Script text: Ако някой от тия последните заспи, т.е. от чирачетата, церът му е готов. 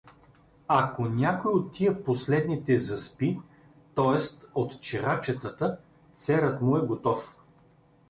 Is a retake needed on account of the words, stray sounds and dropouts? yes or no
no